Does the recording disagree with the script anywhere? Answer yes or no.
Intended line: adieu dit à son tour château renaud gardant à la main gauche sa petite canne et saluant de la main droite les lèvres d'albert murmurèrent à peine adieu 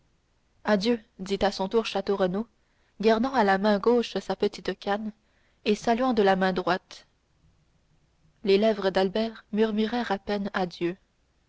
no